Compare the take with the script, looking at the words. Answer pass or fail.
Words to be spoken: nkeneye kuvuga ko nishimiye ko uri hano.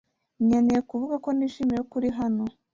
pass